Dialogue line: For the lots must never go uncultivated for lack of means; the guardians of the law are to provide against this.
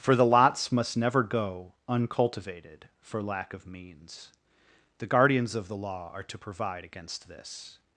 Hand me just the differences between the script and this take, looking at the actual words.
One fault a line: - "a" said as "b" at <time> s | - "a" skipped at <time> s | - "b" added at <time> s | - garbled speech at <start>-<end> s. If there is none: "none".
none